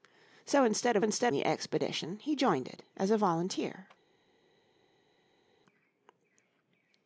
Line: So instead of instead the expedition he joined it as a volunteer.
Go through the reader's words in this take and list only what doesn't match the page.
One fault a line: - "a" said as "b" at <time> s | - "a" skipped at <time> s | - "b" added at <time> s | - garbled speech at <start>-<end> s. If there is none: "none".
none